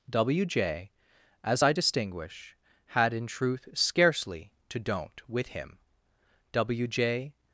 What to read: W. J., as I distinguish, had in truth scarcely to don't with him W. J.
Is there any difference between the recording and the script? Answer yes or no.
no